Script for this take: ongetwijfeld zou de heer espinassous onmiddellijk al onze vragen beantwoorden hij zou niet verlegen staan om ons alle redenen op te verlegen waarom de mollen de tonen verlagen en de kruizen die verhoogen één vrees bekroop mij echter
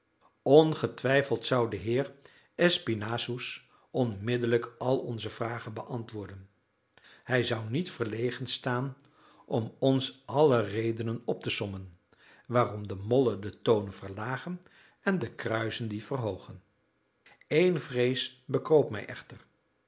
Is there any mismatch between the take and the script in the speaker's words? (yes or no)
yes